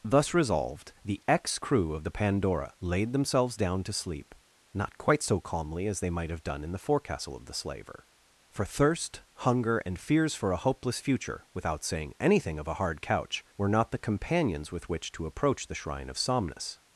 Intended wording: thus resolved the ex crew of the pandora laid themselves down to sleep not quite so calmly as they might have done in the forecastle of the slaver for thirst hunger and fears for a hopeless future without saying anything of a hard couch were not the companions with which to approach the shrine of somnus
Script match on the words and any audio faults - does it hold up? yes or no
yes